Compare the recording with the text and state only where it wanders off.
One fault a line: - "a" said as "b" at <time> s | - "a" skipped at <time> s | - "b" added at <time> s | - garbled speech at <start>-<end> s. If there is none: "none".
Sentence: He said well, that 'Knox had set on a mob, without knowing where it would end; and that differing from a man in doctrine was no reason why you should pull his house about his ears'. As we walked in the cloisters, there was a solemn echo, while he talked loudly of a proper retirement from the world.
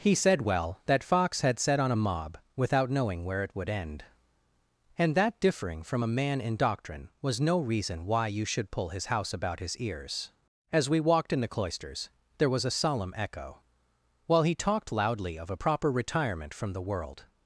- "Knox" said as "Fox" at 1.0 s